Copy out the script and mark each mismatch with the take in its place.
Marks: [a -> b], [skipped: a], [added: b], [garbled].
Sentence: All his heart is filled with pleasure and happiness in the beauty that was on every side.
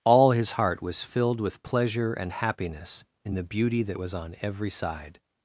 All his heart [is -> was] filled with pleasure and happiness in the beauty that was on every side.